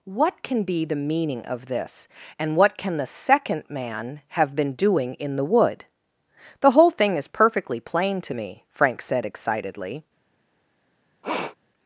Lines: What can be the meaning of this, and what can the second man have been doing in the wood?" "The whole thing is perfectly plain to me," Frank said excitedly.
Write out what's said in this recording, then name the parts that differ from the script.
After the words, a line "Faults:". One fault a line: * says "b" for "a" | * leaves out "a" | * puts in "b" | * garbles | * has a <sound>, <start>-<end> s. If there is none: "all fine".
What can be the meaning of this, and what can the second man have been doing in the wood?" "The whole thing is perfectly plain to me," Frank said excitedly.
Faults:
* has a sniff, 11.2-11.6 s